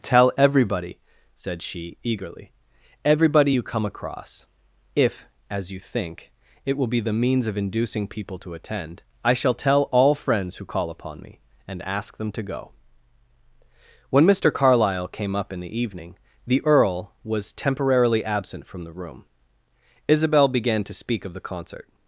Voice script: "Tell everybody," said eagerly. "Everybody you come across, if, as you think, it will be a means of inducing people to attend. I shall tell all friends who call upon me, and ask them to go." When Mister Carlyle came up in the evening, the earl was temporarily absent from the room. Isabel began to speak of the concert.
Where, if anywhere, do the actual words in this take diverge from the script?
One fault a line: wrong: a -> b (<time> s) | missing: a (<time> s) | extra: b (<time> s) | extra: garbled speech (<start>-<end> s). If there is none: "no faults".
extra: she (1.6 s)
wrong: a -> the (7.0 s)